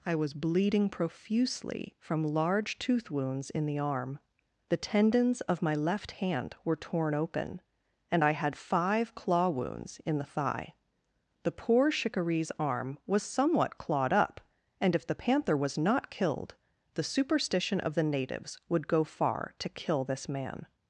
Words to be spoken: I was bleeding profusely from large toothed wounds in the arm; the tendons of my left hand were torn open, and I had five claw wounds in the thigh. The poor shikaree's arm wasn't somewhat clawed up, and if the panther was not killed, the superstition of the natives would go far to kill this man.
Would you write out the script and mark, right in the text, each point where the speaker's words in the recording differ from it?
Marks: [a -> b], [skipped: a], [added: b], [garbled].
I was bleeding profusely from large [toothed -> tooth] wounds in the arm; the tendons of my left hand were torn open, and I had five claw wounds in the thigh. The poor shikaree's arm [wasn't -> was] somewhat clawed up, and if the panther was not killed, the superstition of the natives would go far to kill this man.